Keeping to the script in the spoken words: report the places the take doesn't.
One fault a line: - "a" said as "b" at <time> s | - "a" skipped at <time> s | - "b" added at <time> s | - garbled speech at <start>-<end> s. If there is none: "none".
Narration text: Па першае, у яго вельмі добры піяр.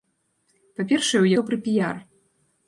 - "яго вельмі" skipped at 1.3 s